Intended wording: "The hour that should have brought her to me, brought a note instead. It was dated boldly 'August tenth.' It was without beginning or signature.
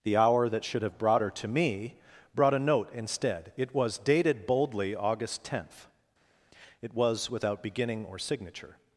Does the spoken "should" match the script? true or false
true